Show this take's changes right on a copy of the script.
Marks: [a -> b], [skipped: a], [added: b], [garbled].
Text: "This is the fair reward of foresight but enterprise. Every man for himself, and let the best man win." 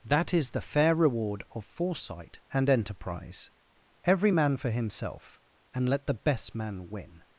["This -> That] is the fair reward of foresight [but -> and] enterprise. Every man for himself, and let the best man win."